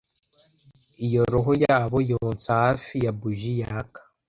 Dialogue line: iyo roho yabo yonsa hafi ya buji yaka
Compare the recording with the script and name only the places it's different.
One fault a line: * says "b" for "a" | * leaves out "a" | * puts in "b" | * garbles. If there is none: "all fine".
all fine